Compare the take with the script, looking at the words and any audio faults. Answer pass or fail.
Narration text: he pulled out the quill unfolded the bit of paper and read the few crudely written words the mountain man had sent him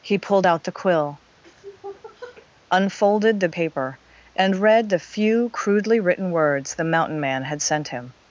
fail